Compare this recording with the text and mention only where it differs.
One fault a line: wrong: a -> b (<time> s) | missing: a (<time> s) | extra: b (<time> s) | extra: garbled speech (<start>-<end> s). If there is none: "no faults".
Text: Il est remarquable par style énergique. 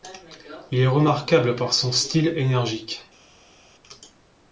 extra: son (1.7 s)